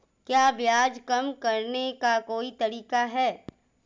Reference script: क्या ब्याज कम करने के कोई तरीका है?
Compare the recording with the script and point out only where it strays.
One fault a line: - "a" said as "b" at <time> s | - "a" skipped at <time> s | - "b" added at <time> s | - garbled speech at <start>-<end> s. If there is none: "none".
- "के" said as "का" at 1.9 s